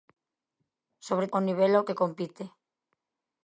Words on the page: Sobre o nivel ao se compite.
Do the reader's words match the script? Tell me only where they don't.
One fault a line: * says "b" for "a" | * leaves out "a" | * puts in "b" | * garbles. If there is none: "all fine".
all fine